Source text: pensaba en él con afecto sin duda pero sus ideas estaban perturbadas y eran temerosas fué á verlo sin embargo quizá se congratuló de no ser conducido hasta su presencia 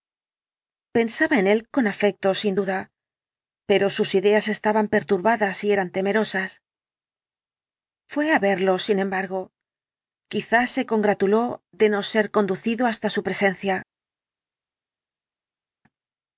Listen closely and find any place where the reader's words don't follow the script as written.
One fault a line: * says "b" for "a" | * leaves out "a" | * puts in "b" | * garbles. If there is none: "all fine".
all fine